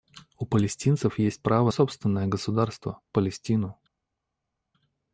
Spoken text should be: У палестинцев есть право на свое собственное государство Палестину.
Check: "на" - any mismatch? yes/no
yes